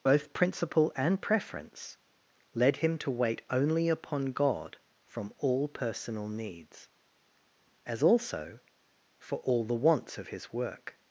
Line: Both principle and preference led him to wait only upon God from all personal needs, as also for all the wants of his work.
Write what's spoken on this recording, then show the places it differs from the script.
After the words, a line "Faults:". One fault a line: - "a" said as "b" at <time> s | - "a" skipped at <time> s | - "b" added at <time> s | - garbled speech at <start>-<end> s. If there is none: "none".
Both principle and preference led him to wait only upon God from all personal needs, as also for all the wants of his work.
Faults:
none